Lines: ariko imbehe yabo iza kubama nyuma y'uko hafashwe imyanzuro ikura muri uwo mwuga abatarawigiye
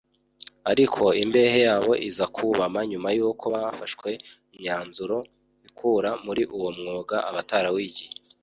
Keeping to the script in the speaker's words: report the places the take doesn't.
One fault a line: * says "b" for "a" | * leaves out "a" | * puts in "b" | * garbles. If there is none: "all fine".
all fine